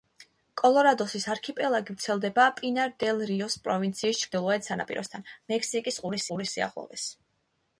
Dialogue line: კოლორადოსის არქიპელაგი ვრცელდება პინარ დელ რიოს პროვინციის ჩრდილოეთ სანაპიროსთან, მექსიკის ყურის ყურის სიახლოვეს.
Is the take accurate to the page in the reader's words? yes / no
yes